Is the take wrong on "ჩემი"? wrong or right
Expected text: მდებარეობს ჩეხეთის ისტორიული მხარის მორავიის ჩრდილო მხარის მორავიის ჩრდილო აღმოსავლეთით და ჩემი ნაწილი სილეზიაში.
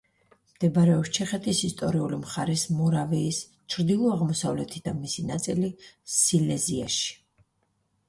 wrong